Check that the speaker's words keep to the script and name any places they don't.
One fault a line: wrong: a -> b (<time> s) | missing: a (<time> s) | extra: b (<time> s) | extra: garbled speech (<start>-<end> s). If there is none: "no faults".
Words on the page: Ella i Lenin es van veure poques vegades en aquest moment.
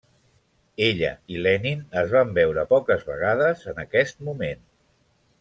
no faults